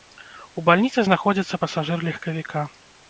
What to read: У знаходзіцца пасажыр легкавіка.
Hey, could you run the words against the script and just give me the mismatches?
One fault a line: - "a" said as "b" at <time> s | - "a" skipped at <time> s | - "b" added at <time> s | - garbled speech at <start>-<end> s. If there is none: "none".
- "бальніцы" added at 0.7 s